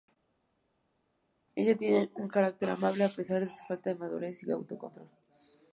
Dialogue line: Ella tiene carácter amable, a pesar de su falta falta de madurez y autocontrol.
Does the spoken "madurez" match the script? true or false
true